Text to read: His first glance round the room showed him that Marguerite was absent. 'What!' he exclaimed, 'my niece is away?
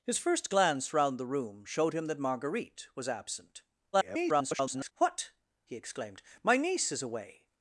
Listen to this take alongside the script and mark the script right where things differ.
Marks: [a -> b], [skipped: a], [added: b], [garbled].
His first glance round the room showed him that Marguerite was absent. [garbled] 'What!' he exclaimed, 'my niece is away?